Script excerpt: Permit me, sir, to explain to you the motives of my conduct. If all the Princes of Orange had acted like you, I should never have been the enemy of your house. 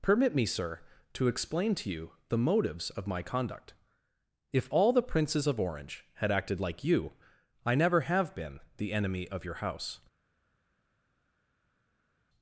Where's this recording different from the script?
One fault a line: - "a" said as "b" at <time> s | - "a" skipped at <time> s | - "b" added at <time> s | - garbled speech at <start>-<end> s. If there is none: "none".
- "should" skipped at 7.8 s